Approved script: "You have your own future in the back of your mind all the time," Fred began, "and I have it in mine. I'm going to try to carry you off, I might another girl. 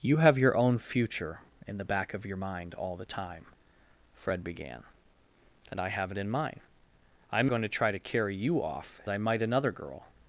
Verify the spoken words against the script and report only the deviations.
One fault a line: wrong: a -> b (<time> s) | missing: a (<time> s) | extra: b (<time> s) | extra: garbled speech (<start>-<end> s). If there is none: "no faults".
no faults